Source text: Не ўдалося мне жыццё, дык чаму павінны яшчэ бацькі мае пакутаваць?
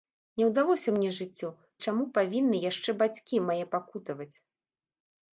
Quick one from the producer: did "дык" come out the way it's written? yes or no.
no